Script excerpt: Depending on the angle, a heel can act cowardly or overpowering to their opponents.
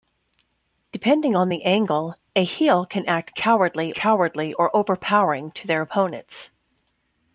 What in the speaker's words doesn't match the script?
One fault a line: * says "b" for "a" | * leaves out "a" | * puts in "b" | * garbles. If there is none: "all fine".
* puts in "cowardly"